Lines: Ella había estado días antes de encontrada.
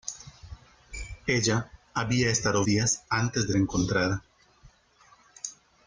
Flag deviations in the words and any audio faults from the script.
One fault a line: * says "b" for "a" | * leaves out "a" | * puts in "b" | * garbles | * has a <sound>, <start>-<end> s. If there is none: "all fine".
all fine